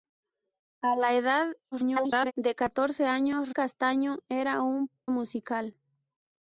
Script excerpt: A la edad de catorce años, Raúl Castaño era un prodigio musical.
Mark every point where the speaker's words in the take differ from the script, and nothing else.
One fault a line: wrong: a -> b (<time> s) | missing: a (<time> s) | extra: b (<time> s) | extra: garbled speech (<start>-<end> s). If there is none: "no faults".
extra: garbled speech (1.7-2.3 s)
missing: Raúl (3.5 s)
missing: prodigio (4.9 s)